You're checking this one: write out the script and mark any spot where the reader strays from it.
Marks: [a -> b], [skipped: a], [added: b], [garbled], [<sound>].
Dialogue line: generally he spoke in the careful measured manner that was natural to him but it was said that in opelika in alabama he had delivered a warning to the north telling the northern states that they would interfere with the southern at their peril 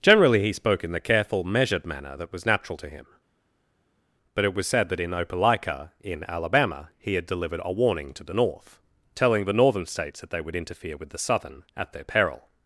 generally he spoke in the careful measured manner that was natural to him but it was said that in opelika in alabama he had delivered a warning to the north telling the northern states that they would interfere with the southern at their peril